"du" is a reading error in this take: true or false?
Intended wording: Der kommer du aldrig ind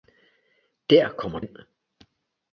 true